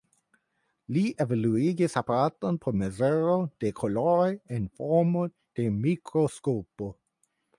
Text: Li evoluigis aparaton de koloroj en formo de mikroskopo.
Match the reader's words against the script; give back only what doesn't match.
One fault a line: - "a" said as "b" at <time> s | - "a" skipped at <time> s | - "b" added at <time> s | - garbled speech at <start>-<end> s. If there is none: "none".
- "por mezuro" added at 2.6 s